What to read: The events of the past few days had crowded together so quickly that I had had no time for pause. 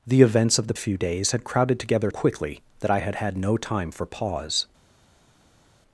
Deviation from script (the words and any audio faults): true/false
true